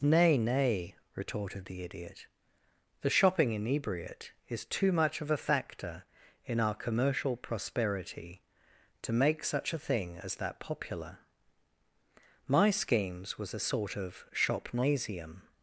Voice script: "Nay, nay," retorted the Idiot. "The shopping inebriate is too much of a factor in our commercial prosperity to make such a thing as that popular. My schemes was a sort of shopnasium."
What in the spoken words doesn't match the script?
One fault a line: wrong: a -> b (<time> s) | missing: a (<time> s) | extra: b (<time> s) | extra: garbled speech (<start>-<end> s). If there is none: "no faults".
no faults